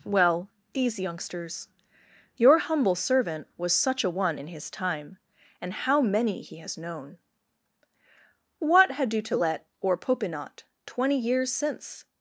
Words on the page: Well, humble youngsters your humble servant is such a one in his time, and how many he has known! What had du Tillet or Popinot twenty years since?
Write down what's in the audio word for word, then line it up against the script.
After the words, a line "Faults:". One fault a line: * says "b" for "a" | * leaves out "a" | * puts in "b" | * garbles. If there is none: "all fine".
Well, these youngsters your humble servant was such a one in his time, and how many he has known! What had du Tillet or Popinot twenty years since?
Faults:
* says "these" for "humble"
* says "was" for "is"